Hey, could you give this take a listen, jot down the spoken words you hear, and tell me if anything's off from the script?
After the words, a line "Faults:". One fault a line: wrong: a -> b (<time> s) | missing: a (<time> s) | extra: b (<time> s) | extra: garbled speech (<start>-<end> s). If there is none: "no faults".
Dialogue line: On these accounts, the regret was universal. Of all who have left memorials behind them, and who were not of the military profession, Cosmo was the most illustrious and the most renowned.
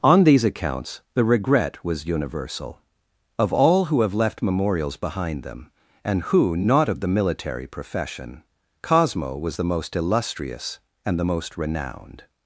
On these accounts, the regret was universal. Of all who have left memorials behind them, and who not of the military profession, Cosmo was the most illustrious and the most renowned.
Faults:
missing: were (6.6 s)